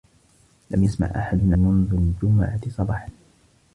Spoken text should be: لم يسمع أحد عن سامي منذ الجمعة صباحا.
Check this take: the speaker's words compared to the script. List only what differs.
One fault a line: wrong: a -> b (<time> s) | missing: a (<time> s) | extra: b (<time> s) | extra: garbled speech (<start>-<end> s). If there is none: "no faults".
missing: عن سامي (1.5 s)